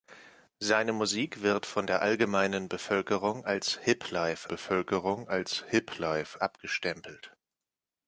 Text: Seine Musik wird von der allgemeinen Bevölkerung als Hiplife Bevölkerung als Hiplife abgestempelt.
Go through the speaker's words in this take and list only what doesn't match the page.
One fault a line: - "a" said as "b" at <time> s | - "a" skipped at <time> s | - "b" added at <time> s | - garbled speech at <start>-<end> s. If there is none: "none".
none